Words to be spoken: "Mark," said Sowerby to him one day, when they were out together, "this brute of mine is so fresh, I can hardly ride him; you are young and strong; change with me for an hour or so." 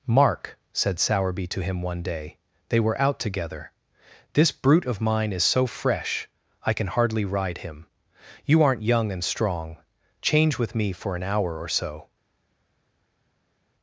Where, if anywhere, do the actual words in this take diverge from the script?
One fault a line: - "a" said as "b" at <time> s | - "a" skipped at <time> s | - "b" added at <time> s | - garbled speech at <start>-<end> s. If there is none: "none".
- "when" skipped at 2.4 s
- "are" said as "aren't" at 8.6 s